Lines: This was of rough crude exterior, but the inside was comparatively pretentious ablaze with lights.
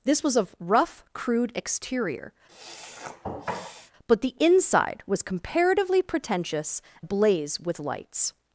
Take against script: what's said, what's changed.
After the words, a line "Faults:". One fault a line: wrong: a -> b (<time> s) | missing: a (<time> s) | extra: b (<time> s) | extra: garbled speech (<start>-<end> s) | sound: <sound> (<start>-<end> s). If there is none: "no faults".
This was of rough crude exterior, but the inside was comparatively pretentious ablaze with lights.
Faults:
sound: sniff (2.5-3.9 s)